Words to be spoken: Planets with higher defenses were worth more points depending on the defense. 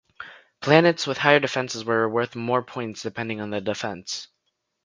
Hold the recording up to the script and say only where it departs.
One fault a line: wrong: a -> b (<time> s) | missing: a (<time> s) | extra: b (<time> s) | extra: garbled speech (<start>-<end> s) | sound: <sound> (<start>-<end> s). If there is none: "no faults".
no faults